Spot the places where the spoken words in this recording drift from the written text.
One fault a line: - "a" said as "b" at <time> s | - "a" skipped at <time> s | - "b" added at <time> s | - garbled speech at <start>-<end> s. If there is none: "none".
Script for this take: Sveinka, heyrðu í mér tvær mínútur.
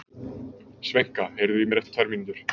- "eftir" added at 1.8 s